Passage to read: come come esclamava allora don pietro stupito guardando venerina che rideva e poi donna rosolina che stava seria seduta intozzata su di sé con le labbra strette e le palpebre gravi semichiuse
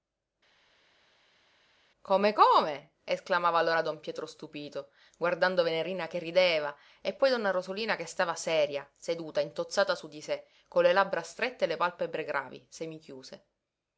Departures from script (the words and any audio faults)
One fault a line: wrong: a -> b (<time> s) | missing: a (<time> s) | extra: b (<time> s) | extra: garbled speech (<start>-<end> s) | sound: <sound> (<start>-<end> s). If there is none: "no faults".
no faults